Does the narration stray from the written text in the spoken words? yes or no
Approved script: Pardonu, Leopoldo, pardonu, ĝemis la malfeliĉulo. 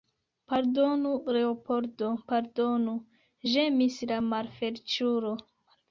no